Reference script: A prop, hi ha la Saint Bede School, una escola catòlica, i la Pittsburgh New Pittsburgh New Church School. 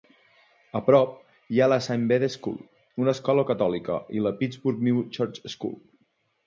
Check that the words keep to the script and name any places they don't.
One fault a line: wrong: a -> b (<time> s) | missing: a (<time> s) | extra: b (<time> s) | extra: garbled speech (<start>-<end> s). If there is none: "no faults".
missing: Pittsburgh New (5.1 s)